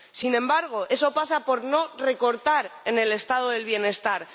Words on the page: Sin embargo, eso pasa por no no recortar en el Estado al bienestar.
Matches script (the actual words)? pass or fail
fail